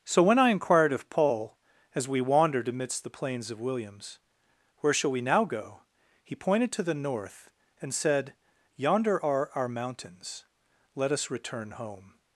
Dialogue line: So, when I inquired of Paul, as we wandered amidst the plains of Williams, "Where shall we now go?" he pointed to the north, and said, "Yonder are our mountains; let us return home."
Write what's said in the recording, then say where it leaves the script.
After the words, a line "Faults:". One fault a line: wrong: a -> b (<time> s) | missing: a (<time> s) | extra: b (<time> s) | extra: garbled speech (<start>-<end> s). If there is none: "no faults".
So, when I inquired of Paul, as we wandered amidst the plains of Williams, "Where shall we now go?" he pointed to the north, and said, "Yonder are our mountains; let us return home."
Faults:
no faults